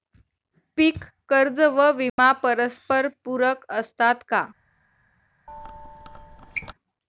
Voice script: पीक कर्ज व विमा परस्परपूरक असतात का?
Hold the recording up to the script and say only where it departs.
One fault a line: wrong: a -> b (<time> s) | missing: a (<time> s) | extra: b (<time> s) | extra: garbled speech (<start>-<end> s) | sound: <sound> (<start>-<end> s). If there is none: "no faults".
sound: dropout (2.1-2.2 s)
sound: squeak (5.5-6.7 s)